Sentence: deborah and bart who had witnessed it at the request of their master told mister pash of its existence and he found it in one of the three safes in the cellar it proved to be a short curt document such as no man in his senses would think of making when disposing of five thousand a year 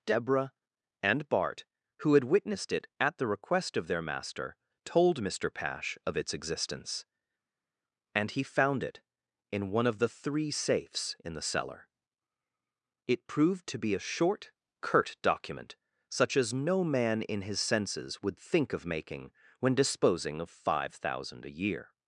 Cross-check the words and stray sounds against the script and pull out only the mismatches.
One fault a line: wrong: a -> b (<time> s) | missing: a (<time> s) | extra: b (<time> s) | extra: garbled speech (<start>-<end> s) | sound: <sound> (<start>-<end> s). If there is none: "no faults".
no faults